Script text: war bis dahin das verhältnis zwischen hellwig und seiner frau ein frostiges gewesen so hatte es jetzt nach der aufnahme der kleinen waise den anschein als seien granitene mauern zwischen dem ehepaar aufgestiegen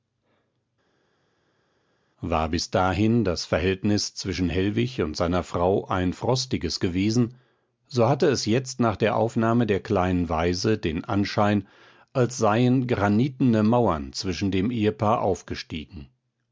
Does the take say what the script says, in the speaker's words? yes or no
yes